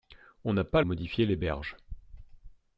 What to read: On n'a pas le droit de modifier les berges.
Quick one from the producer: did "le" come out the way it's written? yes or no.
no